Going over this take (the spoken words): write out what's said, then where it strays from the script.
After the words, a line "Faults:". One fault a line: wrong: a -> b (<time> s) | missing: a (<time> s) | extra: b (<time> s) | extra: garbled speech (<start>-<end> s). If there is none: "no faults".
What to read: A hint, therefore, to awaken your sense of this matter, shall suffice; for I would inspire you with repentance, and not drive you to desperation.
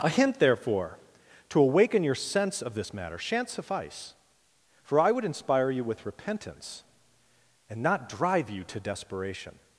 A hint, therefore, to awaken your sense of this matter, shan't suffice; for I would inspire you with repentance, and not drive you to desperation.
Faults:
wrong: shall -> shan't (3.2 s)